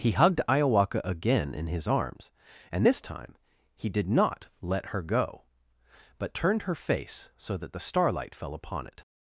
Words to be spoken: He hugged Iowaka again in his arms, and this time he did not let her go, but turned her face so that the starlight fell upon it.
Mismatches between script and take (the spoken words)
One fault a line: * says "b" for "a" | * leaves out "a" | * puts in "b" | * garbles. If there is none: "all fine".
all fine